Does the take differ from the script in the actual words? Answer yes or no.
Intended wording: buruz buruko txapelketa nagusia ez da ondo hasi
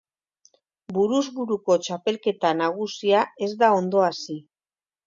no